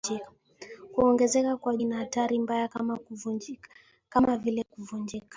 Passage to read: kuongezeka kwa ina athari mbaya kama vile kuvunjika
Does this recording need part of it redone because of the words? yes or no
no